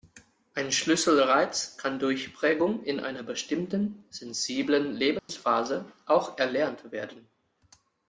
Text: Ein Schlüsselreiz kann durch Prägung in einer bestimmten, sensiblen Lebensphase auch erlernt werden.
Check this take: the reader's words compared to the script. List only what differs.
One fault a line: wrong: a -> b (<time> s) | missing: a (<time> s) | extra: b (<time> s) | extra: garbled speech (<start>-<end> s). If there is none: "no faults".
no faults